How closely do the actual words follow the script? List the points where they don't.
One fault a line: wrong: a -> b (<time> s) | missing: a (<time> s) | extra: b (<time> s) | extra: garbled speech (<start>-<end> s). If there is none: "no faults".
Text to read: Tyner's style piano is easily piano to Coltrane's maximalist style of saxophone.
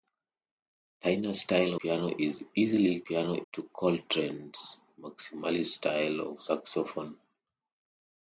no faults